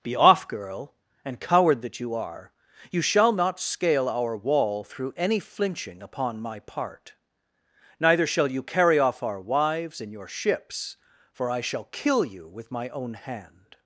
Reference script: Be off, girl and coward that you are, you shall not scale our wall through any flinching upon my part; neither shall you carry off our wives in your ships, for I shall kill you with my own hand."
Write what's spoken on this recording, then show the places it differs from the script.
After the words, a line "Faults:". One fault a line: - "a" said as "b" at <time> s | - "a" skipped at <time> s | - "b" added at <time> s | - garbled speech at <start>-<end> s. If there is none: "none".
Be off, girl and coward that you are, you shall not scale our wall through any flinching upon my part; neither shall you carry off our wives in your ships, for I shall kill you with my own hand."
Faults:
none